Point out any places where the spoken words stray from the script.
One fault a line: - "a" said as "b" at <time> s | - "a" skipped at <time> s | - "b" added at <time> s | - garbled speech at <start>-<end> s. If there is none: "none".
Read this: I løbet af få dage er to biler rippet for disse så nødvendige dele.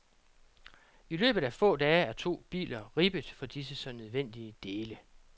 none